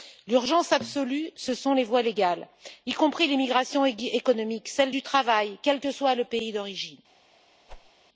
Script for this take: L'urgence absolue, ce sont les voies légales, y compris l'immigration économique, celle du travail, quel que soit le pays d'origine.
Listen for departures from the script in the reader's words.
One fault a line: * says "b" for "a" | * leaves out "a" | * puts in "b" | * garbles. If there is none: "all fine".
all fine